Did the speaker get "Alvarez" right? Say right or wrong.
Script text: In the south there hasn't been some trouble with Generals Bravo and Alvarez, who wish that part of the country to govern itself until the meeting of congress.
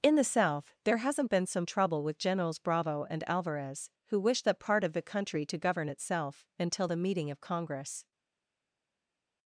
right